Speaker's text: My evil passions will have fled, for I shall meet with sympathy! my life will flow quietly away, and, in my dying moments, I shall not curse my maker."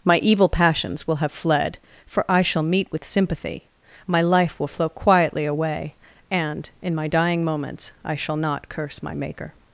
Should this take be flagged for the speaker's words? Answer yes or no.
no